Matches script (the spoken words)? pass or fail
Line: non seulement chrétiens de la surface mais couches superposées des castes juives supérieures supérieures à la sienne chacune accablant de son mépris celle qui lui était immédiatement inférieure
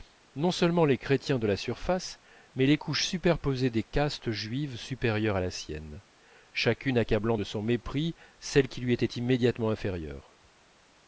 fail